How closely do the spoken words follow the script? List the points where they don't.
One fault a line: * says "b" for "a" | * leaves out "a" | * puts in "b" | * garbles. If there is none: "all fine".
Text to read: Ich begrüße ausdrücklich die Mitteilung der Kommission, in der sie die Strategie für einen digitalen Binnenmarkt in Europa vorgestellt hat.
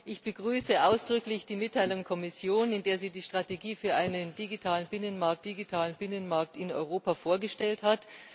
* leaves out "der"
* puts in "digitalen Binnenmarkt"